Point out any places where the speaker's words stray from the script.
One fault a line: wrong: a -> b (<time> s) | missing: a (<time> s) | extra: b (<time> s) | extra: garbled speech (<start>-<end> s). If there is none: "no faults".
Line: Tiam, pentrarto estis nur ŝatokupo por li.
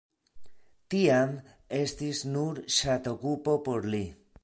missing: pentrarto (1.3 s)